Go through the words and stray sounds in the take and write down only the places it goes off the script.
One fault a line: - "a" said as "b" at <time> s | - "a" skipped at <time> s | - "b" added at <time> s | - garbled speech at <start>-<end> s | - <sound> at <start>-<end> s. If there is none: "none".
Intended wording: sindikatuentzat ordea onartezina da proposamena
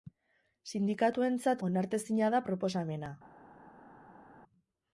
- "ordea" skipped at 1.6 s